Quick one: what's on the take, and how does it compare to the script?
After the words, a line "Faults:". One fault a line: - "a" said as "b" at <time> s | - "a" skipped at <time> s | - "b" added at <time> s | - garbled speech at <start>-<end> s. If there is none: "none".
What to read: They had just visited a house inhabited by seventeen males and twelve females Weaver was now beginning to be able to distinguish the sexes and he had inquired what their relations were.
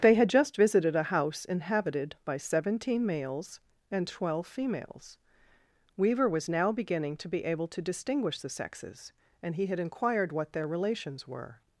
They had just visited a house inhabited by seventeen males and twelve females Weaver was now beginning to be able to distinguish the sexes and he had inquired what their relations were.
Faults:
none